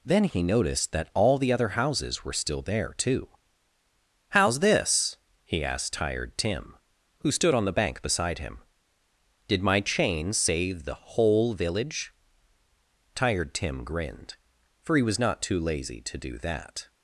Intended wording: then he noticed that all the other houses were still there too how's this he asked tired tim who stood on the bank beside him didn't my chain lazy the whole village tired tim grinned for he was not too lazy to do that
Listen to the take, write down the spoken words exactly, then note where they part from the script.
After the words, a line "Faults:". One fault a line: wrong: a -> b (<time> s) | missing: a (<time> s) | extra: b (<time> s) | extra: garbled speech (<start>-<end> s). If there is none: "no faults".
then he noticed that all the other houses were still there too how's this he asked tired tim who stood on the bank beside him did my chain save the whole village tired tim grinned for he was not too lazy to do that
Faults:
wrong: didn't -> did (9.5 s)
wrong: lazy -> save (10.3 s)